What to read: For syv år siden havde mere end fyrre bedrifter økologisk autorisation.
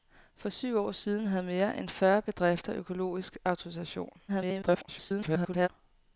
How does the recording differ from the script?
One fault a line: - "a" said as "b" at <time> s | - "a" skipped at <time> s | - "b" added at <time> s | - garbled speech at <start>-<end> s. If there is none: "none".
- garbled speech at 4.3-5.7 s